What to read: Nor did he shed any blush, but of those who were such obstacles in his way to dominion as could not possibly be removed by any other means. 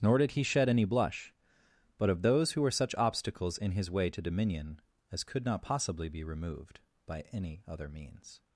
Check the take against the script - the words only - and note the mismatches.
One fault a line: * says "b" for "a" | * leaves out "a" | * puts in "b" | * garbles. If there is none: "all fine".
all fine